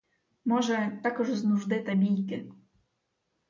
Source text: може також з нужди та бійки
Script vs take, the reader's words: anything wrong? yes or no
no